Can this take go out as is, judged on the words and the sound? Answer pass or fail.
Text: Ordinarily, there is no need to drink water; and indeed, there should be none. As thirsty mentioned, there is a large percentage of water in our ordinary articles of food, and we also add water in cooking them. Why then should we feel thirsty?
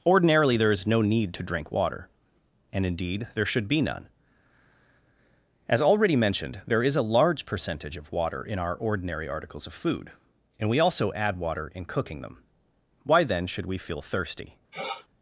fail